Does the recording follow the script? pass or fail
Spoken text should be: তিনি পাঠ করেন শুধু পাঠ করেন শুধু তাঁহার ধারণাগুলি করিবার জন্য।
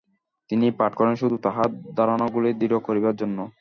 fail